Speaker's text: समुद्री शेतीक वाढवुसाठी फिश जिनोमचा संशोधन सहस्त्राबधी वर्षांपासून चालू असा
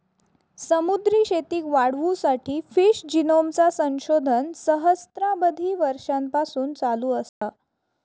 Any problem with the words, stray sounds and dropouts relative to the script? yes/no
yes